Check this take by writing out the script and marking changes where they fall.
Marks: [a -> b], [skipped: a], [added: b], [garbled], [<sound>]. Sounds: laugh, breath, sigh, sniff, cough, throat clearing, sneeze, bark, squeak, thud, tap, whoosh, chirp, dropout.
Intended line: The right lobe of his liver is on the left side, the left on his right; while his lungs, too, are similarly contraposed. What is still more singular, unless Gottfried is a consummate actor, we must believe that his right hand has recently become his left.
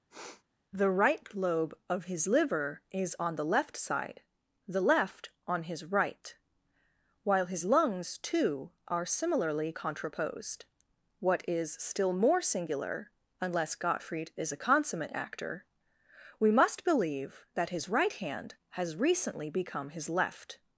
[sniff] The right lobe of his liver is on the left side, the left on his right; while his lungs, too, are similarly contraposed. What is still more singular, unless Gottfried is a consummate actor, we must believe that his right hand has recently become his left.